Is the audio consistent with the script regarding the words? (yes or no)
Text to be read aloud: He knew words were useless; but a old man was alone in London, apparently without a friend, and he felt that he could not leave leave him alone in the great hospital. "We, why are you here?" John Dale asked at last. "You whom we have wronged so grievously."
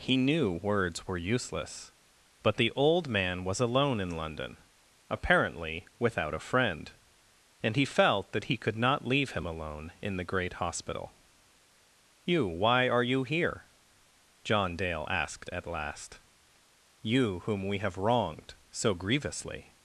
no